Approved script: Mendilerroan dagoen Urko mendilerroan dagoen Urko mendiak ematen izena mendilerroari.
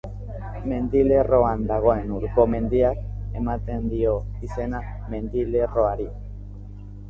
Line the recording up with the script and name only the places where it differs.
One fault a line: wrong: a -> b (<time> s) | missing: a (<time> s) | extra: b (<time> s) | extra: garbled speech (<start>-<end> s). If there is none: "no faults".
missing: mendilerroan dagoen Urko (2.5 s)
extra: dio (3.9 s)